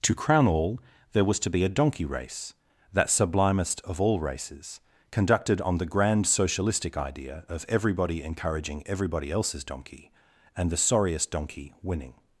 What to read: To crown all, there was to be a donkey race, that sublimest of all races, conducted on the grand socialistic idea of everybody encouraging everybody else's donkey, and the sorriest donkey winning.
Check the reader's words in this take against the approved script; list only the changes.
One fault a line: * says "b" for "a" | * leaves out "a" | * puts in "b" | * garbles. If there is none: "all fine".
all fine